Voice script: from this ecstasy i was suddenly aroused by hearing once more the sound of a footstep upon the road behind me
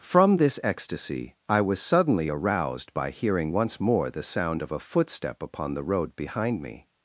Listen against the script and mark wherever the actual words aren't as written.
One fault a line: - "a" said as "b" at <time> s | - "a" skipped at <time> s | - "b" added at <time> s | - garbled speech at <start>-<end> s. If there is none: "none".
none